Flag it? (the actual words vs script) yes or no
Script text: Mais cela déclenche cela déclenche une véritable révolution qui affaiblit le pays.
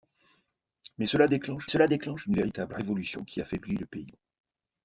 no